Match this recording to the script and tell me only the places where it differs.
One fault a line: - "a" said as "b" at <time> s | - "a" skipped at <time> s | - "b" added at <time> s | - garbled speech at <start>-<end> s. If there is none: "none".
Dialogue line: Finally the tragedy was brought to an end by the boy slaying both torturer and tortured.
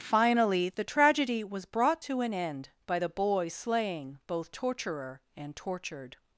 none